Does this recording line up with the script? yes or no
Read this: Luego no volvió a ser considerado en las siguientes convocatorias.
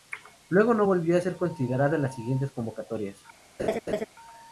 yes